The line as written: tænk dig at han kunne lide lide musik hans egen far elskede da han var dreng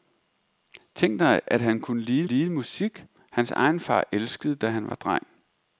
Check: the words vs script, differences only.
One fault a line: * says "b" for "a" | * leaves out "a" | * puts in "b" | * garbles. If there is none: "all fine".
all fine